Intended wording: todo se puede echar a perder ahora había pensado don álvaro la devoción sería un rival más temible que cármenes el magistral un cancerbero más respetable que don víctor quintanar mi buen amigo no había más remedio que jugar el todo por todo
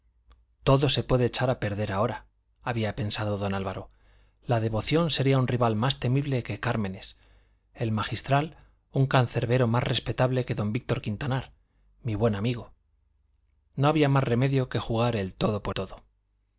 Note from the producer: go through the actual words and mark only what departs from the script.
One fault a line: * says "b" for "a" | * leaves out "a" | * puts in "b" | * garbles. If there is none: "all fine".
all fine